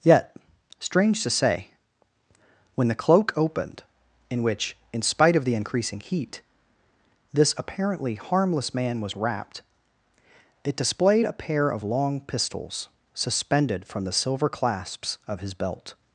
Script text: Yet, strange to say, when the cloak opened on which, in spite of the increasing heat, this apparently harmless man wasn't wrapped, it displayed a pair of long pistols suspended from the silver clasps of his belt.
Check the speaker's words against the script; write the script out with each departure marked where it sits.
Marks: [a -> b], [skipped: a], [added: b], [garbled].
Yet, strange to say, when the cloak opened [on -> in] which, in spite of the increasing heat, this apparently harmless man [wasn't -> was] wrapped, it displayed a pair of long pistols suspended from the silver clasps of his belt.